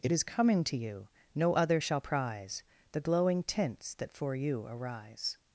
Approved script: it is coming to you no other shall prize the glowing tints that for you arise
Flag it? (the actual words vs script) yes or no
no